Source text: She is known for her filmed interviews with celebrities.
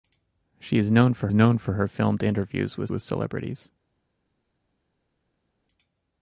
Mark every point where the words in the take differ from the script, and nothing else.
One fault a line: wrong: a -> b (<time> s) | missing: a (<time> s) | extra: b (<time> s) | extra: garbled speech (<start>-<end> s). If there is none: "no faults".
extra: known for (1.3 s)
extra: with (2.9 s)